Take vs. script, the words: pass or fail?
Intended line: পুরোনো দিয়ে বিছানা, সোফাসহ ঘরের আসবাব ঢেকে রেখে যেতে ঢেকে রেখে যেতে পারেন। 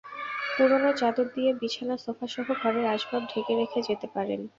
fail